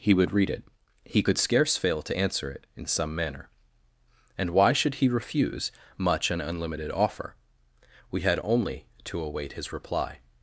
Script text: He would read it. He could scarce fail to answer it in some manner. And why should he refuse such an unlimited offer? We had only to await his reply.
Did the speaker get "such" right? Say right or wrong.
wrong